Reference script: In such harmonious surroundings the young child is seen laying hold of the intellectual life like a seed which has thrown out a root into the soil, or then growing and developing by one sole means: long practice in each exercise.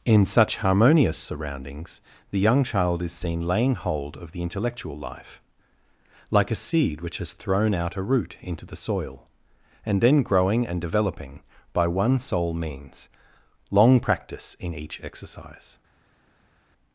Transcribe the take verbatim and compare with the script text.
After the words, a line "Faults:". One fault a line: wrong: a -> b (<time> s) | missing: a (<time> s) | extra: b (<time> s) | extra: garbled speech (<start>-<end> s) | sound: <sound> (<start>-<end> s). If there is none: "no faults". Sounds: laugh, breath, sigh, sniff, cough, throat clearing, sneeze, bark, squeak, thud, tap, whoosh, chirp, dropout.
In such harmonious surroundings the young child is seen laying hold of the intellectual life like a seed which has thrown out a root into the soil, and then growing and developing by one sole means: long practice in each exercise.
Faults:
wrong: or -> and (9.8 s)